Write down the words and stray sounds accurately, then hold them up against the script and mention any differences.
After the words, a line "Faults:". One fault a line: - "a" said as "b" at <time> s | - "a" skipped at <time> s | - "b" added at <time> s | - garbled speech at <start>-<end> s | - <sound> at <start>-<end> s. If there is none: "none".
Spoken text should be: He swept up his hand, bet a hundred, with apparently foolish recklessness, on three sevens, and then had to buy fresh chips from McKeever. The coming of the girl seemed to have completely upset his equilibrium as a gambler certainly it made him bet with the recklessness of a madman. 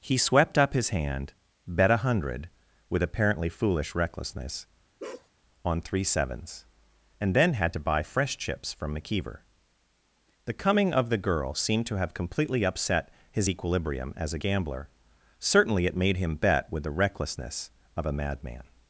He swept up his hand, bet a hundred, with apparently foolish recklessness, on three sevens, and then had to buy fresh chips from McKeever. The coming of the girl seemed to have completely upset his equilibrium as a gambler certainly it made him bet with the recklessness of a madman.
Faults:
- bark at 5.0-5.3 s